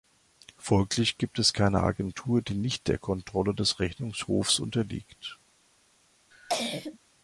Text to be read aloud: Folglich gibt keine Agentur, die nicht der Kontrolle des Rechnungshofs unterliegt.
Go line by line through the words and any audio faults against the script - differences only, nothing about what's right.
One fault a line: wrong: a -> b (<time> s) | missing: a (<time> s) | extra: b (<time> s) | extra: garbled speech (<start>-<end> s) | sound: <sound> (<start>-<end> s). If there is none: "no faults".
extra: es (1.4 s)
sound: cough (6.3-7.0 s)